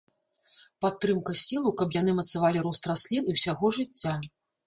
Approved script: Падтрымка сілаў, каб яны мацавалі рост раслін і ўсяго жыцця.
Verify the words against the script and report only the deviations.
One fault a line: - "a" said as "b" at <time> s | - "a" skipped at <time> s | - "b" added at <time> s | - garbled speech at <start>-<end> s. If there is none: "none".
none